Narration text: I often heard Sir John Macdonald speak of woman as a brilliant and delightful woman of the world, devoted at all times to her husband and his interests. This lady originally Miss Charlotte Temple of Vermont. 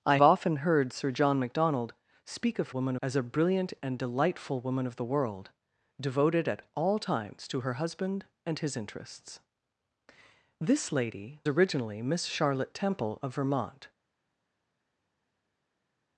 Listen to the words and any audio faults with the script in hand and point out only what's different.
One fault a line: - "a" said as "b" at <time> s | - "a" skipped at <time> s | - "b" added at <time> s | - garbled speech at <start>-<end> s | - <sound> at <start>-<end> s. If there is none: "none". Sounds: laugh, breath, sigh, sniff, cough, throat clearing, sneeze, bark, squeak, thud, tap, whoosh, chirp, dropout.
none